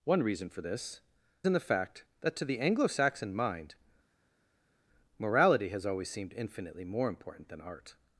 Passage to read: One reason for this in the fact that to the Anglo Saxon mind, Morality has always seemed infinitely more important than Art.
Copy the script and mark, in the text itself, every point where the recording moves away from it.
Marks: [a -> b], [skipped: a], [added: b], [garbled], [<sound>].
One reason for this in the fact that to the Anglo Saxon mind, Morality has always seemed infinitely more important than Art.